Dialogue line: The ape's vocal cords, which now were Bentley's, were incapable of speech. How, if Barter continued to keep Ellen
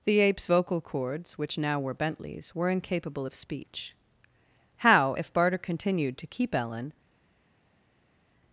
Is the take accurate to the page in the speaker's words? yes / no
yes